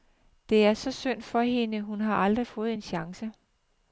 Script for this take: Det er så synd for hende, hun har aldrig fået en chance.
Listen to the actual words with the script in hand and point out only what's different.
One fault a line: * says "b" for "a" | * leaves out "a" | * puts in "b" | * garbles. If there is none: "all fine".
all fine